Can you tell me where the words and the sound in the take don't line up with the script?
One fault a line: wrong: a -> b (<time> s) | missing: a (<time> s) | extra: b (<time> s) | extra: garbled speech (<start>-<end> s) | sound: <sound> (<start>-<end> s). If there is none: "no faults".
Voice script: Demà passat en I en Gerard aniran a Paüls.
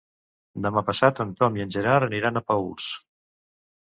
extra: Tom (1.4 s)